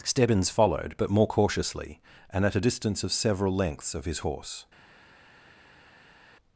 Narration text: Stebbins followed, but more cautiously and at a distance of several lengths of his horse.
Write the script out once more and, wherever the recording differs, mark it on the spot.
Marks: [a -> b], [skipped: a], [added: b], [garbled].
Stebbins followed, but more cautiously and at a distance of several lengths of his horse.